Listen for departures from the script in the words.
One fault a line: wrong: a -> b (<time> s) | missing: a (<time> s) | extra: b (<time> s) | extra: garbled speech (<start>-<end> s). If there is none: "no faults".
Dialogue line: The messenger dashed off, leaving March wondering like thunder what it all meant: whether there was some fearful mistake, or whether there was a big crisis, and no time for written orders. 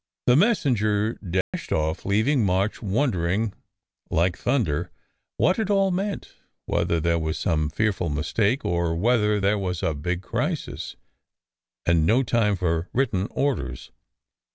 no faults